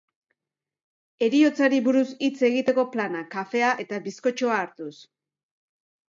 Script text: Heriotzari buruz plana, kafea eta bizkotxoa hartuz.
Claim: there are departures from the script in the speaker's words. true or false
true